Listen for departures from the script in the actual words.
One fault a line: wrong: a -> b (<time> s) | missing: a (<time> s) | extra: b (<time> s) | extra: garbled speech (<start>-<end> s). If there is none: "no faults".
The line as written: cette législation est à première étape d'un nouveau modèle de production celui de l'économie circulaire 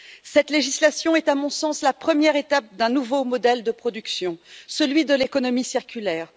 extra: mon sens la (1.4 s)